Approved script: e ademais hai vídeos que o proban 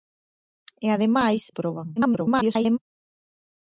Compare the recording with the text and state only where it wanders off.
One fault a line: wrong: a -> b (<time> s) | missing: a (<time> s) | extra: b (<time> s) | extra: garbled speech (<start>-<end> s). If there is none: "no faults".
missing: hai vídeos que (1.4 s)
extra: garbled speech (2.0-2.8 s)